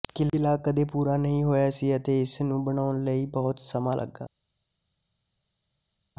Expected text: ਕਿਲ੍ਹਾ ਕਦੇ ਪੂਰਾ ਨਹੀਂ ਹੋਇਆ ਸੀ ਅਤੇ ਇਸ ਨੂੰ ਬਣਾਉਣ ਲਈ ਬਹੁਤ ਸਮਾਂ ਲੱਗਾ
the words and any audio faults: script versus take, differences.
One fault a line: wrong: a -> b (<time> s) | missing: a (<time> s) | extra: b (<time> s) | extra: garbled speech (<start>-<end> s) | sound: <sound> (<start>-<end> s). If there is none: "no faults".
no faults